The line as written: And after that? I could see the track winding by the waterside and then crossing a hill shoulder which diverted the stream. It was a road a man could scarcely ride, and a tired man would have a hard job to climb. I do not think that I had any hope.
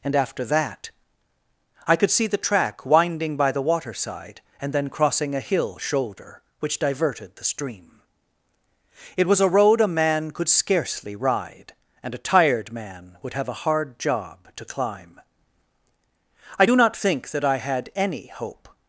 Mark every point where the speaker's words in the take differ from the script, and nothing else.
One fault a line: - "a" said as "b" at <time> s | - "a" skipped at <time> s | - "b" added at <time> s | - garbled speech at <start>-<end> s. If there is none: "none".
none